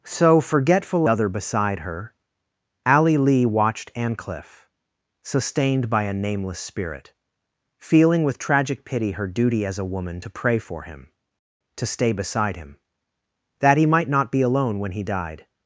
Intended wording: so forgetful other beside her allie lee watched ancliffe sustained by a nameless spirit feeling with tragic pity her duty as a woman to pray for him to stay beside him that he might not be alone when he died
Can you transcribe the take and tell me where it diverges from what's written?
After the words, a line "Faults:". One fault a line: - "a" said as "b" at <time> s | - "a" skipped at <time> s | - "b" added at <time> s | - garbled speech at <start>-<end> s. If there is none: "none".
so forgetful other beside her allie lee watched ancliffe sustained by a nameless spirit feeling with tragic pity her duty as a woman to pray for him to stay beside him that he might not be alone when he died
Faults:
none